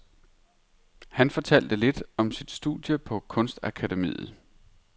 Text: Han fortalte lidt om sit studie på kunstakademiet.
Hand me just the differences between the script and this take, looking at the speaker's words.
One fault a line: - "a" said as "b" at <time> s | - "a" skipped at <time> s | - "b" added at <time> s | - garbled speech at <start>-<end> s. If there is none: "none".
none